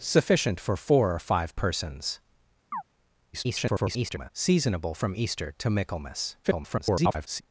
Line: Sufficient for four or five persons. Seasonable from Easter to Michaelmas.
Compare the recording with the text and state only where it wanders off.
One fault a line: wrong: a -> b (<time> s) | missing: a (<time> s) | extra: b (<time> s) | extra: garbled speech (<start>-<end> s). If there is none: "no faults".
extra: garbled speech (3.3-4.3 s)
extra: garbled speech (6.4-7.4 s)